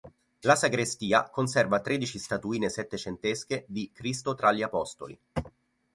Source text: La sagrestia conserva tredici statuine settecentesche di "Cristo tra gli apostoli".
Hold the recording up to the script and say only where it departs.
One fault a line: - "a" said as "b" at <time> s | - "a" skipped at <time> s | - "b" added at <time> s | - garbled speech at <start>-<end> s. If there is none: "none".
none